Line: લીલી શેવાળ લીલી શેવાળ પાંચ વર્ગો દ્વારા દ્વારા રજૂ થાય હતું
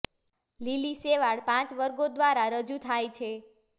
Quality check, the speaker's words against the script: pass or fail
fail